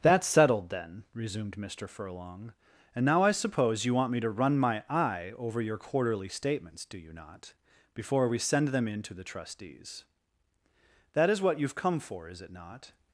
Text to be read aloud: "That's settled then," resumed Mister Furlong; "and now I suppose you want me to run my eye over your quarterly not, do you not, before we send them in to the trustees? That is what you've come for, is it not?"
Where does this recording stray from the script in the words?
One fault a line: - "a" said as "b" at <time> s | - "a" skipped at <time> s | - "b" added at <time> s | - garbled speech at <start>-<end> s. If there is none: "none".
- "not" said as "statements" at 6.3 s